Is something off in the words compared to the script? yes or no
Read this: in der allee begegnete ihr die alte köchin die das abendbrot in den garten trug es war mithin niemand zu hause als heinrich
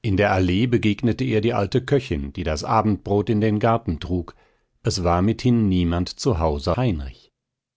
yes